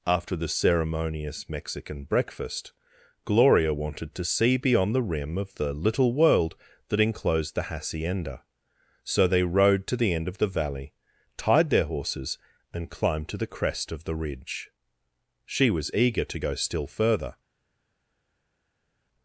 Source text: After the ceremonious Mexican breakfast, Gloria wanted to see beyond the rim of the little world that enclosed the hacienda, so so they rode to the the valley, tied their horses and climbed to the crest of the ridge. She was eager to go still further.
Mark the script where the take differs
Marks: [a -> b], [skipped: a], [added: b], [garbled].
After the ceremonious Mexican breakfast, Gloria wanted to see beyond the rim of the little world that enclosed the hacienda, so [skipped: so] they rode to the [added: end of] the valley, tied their horses and climbed to the crest of the ridge. She was eager to go still further.